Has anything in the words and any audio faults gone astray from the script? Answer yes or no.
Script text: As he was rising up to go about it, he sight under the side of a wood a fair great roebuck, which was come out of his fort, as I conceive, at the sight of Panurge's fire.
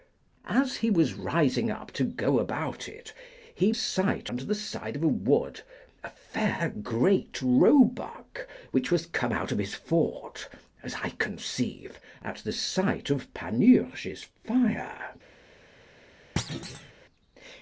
yes